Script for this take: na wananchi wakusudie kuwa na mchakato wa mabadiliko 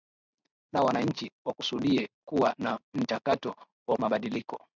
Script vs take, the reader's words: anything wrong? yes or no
no